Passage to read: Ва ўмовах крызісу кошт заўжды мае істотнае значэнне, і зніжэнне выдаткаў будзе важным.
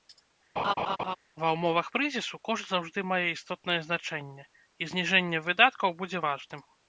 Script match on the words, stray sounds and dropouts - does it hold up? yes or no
no